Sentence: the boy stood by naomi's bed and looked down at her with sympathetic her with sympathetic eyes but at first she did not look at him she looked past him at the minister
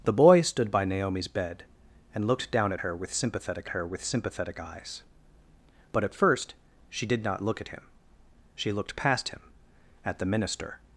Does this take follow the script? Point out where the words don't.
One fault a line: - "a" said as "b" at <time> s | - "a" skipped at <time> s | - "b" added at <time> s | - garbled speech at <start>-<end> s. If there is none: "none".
none